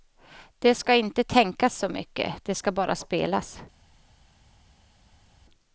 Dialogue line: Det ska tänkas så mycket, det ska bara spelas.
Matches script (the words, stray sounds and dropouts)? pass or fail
fail